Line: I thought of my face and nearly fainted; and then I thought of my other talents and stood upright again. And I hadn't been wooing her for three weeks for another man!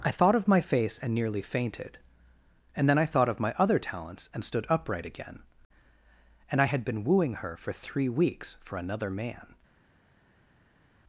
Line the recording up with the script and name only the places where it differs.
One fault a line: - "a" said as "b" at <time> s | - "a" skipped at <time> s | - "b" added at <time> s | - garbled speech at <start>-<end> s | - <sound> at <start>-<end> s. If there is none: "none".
- "hadn't" said as "had" at 6.6 s